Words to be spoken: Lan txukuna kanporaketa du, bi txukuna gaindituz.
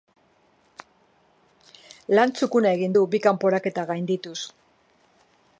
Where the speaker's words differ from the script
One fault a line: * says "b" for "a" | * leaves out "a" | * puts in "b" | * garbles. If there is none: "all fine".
* says "egin" for "kanporaketa"
* says "kanporaketa" for "txukuna"